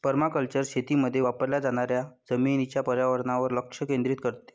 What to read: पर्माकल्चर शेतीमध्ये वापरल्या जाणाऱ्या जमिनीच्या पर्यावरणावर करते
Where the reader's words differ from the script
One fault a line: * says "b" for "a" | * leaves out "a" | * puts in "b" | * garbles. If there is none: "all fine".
* puts in "लक्ष केंद्रित"